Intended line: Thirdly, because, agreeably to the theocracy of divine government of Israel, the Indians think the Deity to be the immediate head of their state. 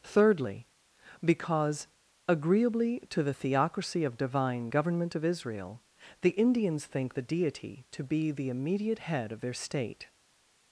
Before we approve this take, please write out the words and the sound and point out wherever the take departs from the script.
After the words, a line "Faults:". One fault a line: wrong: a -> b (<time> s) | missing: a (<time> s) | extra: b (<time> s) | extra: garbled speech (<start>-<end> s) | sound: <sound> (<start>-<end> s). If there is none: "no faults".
Thirdly, because, agreeably to the theocracy of divine government of Israel, the Indians think the Deity to be the immediate head of their state.
Faults:
no faults